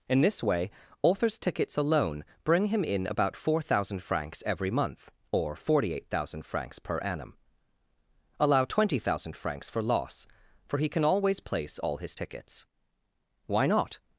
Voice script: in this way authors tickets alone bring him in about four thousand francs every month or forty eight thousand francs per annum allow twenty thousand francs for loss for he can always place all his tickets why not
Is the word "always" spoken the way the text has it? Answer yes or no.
yes